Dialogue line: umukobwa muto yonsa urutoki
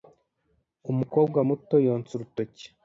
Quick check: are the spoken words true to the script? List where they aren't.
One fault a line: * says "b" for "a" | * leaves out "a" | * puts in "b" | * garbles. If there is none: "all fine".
all fine